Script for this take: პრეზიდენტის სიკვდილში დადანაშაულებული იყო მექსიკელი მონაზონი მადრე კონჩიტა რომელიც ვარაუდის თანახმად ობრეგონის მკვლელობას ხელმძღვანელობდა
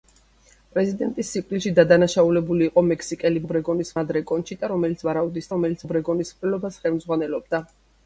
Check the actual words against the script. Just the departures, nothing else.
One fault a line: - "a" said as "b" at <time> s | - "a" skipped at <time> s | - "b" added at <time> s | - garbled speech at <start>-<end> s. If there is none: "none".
- "მონაზონი" said as "ობრეგონის" at 3.4 s
- "თანახმად" said as "რომელიც" at 5.6 s